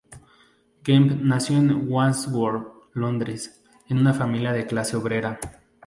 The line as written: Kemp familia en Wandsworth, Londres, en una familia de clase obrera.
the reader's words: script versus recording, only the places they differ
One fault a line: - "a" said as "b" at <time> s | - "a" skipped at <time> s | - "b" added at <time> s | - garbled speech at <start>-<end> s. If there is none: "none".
- "familia" said as "nació" at 1.2 s